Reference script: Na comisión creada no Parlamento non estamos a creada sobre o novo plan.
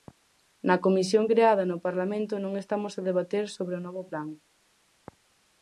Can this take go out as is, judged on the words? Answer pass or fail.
fail